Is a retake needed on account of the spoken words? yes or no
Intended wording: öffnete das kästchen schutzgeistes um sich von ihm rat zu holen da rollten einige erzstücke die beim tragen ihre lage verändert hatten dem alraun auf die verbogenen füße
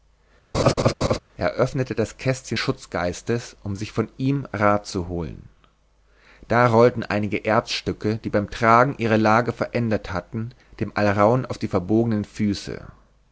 no